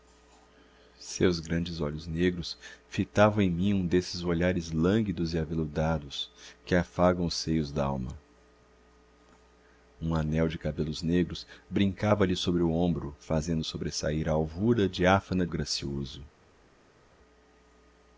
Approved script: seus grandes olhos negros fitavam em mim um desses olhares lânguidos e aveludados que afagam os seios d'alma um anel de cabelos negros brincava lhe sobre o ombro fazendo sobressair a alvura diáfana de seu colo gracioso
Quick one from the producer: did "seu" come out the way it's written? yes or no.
no